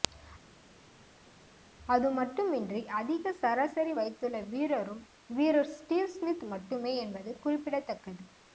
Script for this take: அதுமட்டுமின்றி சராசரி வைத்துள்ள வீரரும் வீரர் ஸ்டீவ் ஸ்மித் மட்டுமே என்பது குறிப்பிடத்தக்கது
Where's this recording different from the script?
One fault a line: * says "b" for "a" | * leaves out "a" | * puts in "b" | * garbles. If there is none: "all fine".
* puts in "அதிக"